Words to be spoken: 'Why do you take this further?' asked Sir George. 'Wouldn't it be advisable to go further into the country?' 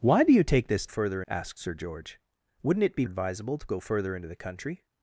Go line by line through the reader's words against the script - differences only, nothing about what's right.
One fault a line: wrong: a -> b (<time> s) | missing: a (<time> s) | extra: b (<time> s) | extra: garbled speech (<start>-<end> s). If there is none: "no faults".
no faults